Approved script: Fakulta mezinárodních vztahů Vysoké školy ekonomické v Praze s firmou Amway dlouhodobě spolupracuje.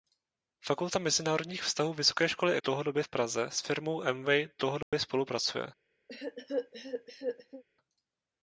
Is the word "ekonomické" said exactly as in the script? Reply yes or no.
no